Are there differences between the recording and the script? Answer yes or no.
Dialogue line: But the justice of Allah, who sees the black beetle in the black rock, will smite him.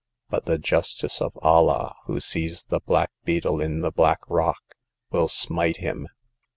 no